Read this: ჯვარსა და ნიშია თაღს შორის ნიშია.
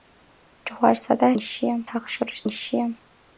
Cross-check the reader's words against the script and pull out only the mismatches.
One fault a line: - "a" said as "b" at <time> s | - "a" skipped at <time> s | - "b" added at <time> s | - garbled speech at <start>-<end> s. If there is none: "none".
none